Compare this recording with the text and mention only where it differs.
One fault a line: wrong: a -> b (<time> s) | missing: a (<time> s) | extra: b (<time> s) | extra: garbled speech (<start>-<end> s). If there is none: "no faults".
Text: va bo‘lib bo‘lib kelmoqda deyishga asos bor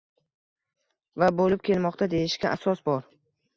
missing: bo‘lib (1.6 s)